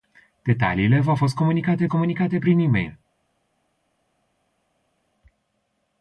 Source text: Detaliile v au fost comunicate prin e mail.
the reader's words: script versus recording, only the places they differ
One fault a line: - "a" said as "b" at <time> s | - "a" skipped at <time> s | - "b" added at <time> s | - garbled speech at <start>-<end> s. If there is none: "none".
- "comunicate" added at 1.9 s